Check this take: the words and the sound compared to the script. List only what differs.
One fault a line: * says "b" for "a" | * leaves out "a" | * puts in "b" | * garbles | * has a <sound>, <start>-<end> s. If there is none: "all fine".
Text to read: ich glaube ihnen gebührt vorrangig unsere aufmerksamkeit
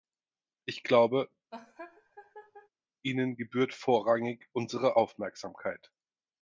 * has a laugh, 1.5-2.7 s